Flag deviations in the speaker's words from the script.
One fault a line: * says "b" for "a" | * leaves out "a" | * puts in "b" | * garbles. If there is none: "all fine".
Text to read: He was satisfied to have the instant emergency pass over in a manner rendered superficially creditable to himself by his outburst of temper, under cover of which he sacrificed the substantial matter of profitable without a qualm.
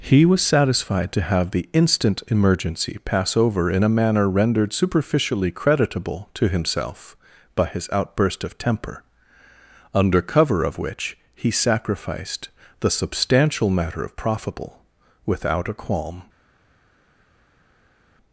all fine